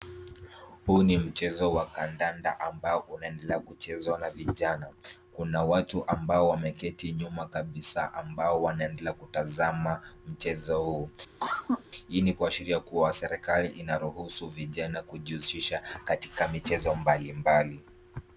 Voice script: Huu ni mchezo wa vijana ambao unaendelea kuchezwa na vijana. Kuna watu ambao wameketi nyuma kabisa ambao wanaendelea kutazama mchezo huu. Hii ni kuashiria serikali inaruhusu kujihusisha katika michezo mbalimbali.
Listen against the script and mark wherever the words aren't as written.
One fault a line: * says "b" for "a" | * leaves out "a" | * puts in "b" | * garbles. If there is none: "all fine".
* says "kandanda" for "vijana"
* puts in "kuwa"
* puts in "vijana"